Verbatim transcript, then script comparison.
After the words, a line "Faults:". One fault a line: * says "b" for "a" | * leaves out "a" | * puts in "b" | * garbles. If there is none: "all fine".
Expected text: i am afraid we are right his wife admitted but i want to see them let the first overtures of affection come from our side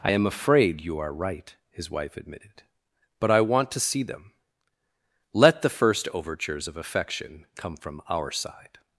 i am afraid you are right his wife admitted but i want to see them let the first overtures of affection come from our side
Faults:
* says "you" for "we"